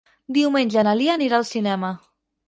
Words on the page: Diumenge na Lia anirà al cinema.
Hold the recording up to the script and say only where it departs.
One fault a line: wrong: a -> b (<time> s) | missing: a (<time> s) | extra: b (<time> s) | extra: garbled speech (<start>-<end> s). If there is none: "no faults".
no faults